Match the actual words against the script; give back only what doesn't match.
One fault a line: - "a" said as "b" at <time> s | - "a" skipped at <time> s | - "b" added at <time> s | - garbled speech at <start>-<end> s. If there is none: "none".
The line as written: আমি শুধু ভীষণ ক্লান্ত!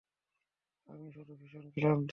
none